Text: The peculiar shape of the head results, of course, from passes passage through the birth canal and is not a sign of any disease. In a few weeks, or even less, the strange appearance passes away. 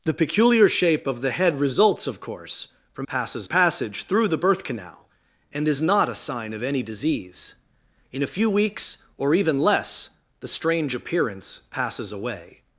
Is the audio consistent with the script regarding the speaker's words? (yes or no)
yes